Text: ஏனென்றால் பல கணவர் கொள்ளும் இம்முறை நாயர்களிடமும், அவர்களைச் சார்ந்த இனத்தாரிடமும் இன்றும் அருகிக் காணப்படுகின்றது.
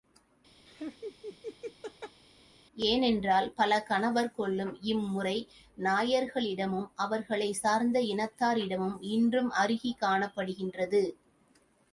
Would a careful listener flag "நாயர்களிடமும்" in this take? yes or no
no